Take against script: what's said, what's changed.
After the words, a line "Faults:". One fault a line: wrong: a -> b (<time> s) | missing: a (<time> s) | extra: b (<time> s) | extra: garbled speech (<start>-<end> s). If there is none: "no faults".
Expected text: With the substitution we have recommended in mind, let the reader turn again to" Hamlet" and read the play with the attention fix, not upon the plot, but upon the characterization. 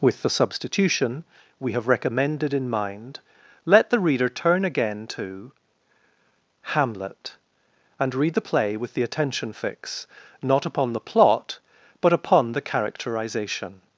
With the substitution we have recommended in mind, let the reader turn again to" Hamlet" and read the play with the attention fix, not upon the plot, but upon the characterization.
Faults:
no faults